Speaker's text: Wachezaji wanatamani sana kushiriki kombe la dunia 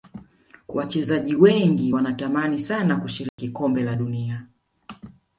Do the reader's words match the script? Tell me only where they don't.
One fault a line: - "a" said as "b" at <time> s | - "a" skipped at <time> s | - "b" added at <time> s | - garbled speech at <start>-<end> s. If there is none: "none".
- "wengi" added at 1.3 s